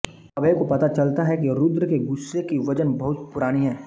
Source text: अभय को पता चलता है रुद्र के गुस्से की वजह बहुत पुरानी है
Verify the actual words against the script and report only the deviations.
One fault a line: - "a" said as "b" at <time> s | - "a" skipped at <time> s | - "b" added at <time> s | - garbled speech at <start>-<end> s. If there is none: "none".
- "कि" added at 1.4 s